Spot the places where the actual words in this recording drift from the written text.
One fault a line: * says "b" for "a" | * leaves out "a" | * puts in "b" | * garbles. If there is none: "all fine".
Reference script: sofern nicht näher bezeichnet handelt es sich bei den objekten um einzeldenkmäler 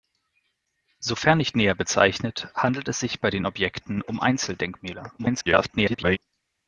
* garbles